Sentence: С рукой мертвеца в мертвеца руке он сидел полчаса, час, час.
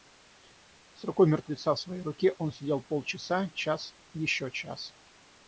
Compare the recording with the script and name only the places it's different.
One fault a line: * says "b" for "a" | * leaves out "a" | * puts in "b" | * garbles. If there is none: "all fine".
* says "своей" for "мертвеца"
* puts in "еще"